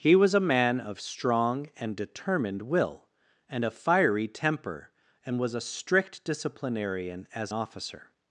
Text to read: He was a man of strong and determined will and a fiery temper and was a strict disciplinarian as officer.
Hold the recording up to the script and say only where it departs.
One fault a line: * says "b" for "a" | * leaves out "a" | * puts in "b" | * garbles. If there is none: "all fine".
all fine